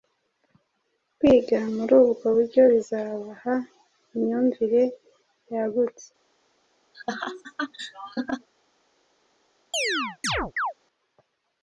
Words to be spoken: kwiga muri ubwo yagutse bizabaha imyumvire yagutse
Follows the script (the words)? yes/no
no